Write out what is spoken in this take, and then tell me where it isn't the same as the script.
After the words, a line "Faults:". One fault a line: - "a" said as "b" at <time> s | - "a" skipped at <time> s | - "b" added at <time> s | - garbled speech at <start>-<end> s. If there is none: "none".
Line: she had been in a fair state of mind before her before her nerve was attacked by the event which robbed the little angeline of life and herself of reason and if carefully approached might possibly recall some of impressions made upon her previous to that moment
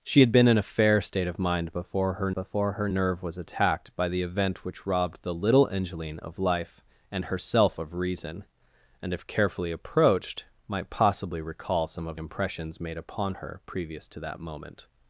she had been in a fair state of mind before her before her nerve was attacked by the event which robbed the little angeline of life and herself of reason and if carefully approached might possibly recall some of impressions made upon her previous to that moment
Faults:
none